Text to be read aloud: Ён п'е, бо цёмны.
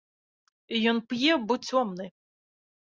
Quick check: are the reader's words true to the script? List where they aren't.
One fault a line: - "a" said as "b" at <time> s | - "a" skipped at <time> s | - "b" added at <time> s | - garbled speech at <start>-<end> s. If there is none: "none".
none